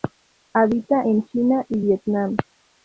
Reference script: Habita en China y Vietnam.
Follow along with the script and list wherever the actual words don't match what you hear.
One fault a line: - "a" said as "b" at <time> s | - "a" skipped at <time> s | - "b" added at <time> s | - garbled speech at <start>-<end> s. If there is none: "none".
none